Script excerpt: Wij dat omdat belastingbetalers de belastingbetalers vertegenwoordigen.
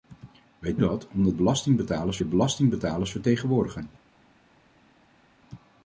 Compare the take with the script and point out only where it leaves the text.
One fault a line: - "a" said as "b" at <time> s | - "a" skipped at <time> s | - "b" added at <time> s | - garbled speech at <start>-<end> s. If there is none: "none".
none